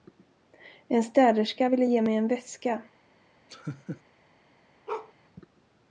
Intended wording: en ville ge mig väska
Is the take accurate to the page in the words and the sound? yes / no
no